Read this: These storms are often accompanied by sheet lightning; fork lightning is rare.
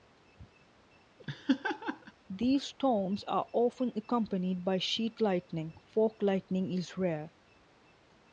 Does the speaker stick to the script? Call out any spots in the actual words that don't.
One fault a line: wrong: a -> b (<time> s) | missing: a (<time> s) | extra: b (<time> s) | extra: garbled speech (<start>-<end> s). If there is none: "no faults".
no faults